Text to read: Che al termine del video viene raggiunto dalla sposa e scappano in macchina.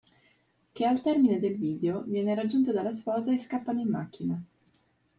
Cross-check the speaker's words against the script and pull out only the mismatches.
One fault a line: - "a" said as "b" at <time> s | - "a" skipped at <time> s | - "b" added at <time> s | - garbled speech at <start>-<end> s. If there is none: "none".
none